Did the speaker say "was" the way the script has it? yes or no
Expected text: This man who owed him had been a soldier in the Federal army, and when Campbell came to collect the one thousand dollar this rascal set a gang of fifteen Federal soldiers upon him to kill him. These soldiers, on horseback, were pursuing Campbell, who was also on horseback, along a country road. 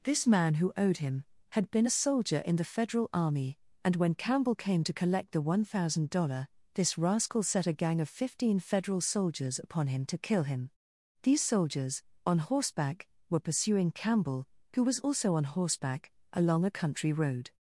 yes